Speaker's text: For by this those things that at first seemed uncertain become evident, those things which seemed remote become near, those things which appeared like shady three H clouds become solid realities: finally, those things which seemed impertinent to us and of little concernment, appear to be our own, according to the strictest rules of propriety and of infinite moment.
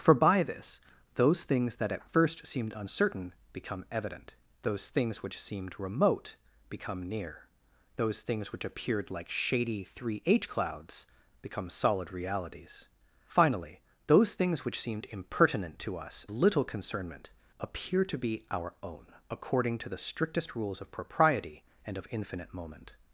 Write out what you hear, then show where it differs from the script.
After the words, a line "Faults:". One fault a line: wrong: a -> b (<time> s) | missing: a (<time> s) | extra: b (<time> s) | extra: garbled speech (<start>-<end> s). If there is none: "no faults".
For by this those things that at first seemed uncertain become evident, those things which seemed remote become near, those things which appeared like shady three H clouds become solid realities: finally, those things which seemed impertinent to us little concernment, appear to be our own, according to the strictest rules of propriety and of infinite moment.
Faults:
missing: and of (16.2 s)